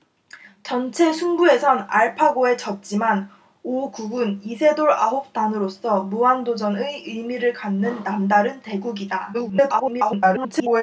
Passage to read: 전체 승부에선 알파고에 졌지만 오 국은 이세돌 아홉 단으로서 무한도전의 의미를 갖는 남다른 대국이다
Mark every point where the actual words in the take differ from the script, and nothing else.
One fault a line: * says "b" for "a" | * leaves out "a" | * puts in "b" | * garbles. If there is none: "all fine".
* garbles